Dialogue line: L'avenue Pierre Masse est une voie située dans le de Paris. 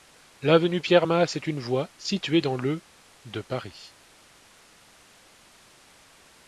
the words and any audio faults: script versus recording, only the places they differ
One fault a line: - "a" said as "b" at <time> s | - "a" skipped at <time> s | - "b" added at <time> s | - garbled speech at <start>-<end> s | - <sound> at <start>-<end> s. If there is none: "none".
none